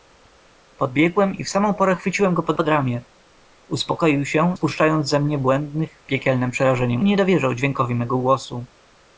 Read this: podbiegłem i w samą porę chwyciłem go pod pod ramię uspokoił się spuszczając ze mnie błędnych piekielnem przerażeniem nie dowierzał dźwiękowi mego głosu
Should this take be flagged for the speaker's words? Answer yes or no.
no